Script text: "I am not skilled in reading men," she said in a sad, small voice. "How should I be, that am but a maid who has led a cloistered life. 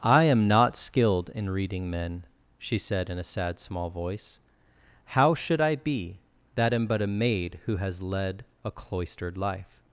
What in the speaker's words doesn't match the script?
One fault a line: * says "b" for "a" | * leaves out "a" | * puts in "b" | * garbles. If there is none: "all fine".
all fine